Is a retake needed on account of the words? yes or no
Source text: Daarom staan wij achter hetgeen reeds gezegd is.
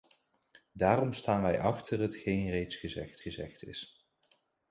yes